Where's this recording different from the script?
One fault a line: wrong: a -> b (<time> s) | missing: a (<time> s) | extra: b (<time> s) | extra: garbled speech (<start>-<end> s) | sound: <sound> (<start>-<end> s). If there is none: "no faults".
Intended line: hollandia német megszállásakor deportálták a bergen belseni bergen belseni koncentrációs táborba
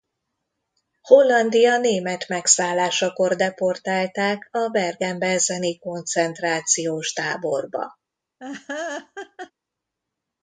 missing: bergen belseni (5.8 s)
sound: laugh (8.4-9.5 s)